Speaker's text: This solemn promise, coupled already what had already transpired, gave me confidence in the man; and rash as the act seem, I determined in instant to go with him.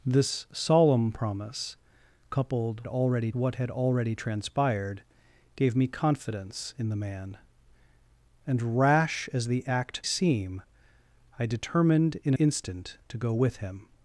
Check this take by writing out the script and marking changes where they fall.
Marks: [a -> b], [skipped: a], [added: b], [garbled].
This solemn promise, coupled already what had already transpired, gave me confidence in the man; and rash as the act seem, I determined in instant to go with him.